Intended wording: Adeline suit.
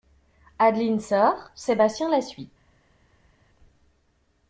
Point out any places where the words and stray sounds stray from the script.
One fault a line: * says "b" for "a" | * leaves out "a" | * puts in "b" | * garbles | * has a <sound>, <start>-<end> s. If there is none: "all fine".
* puts in "sort Sébastien la"